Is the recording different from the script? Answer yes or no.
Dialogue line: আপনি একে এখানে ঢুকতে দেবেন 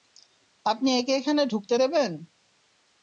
no